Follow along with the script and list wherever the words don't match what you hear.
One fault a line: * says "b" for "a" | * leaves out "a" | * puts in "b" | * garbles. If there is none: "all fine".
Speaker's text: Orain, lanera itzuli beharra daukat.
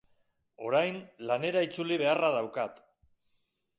all fine